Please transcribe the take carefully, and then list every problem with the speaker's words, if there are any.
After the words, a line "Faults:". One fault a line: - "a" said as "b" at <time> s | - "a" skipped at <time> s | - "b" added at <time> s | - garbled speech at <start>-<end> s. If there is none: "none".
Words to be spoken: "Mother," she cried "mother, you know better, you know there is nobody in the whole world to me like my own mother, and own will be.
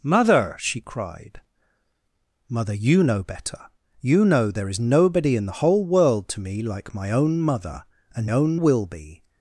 "Mother," she cried "mother, you know better, you know there is nobody in the whole world to me like my own mother, and own will be.
Faults:
none